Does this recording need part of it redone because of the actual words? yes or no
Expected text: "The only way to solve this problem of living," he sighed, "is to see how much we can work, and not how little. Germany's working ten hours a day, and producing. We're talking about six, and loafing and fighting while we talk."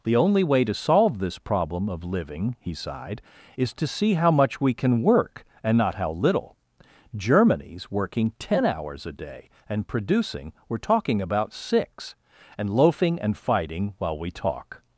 no